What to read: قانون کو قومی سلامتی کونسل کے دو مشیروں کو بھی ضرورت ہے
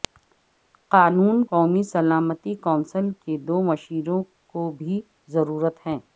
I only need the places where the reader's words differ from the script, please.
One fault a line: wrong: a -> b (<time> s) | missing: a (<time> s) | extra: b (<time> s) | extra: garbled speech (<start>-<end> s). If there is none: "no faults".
missing: کو (1.4 s)